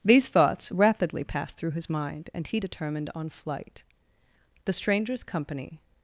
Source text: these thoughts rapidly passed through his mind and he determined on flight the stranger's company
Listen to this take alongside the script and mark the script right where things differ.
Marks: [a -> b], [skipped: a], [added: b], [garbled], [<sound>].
these thoughts rapidly passed through his mind and he determined on flight the stranger's company